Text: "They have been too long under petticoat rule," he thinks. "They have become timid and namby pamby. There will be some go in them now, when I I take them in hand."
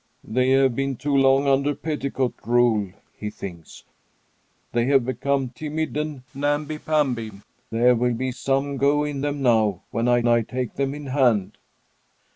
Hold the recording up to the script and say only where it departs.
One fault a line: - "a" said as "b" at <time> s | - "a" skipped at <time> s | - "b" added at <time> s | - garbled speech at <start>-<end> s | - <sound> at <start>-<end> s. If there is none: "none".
none